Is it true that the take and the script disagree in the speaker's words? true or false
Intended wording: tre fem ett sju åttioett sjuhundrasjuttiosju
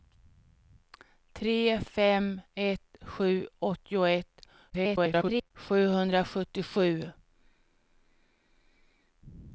true